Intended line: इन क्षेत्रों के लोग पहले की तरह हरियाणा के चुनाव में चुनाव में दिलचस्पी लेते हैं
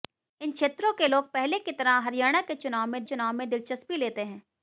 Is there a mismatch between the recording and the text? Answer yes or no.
no